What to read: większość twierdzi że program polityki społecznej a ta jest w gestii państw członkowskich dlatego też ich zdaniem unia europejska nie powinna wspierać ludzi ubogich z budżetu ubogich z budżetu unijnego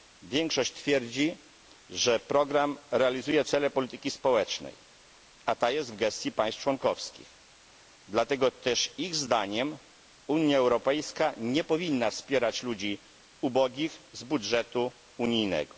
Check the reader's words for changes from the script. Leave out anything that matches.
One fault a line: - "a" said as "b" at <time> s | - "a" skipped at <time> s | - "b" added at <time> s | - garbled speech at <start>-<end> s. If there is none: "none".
- "realizuje cele" added at 2.9 s
- "ubogich z budżetu" skipped at 14.9 s